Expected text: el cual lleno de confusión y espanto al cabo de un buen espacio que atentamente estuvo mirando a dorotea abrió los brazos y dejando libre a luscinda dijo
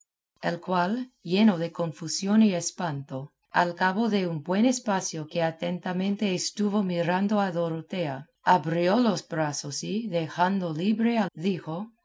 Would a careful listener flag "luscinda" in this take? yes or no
yes